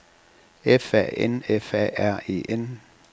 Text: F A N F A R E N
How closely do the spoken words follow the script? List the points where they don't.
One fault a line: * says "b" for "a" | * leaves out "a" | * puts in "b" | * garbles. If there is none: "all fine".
all fine